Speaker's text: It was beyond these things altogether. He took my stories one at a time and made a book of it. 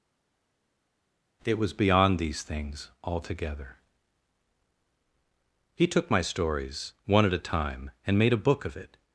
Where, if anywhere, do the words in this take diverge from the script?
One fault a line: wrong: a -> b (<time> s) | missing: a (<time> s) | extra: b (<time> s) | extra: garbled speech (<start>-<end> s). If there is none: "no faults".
no faults